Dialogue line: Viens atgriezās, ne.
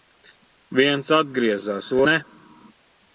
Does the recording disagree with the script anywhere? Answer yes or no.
no